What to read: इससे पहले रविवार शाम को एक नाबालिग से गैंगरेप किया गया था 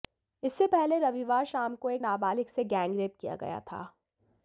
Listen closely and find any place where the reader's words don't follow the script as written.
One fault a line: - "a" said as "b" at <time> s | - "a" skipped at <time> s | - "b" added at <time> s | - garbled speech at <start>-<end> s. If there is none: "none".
none